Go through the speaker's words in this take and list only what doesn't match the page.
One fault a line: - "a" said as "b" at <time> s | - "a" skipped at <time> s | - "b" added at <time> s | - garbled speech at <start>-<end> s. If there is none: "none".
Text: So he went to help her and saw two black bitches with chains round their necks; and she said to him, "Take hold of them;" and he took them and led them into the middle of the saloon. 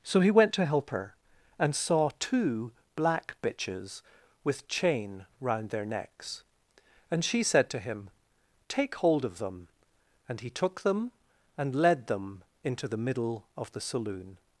- "chains" said as "chain" at 4.7 s